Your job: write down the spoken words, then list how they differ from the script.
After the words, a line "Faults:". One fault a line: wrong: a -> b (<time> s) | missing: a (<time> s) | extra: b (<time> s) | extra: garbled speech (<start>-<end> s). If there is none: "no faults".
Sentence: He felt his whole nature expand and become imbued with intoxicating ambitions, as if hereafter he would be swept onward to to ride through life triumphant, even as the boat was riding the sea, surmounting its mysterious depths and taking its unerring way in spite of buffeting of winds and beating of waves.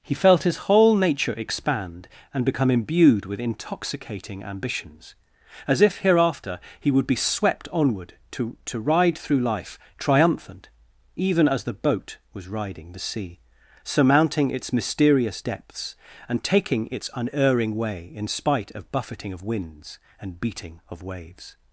He felt his whole nature expand and become imbued with intoxicating ambitions, as if hereafter he would be swept onward to to ride through life triumphant, even as the boat was riding the sea, surmounting its mysterious depths and taking its unerring way in spite of buffeting of winds and beating of waves.
Faults:
no faults